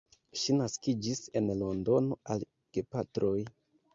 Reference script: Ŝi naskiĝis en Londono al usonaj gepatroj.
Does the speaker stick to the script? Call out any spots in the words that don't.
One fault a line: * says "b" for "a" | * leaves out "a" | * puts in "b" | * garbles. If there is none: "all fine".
* leaves out "usonaj"